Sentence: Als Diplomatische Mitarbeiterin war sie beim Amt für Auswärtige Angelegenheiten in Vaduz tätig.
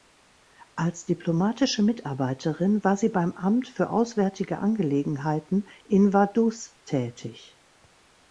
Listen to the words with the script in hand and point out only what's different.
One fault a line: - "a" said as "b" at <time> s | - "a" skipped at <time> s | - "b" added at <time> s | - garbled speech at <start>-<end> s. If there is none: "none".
none